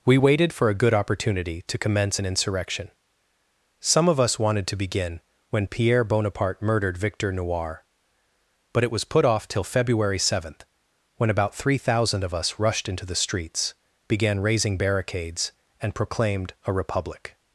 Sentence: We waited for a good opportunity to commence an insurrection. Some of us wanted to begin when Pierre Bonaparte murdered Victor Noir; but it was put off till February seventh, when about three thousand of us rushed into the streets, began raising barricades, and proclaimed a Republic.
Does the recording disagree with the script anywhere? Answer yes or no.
no